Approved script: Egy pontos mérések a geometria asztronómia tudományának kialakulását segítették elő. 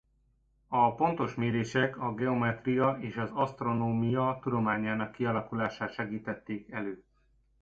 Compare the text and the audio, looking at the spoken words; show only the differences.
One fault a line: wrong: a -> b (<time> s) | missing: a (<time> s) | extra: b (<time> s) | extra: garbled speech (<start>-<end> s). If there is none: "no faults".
wrong: Egy -> A (0.7 s)
extra: és az (3.0 s)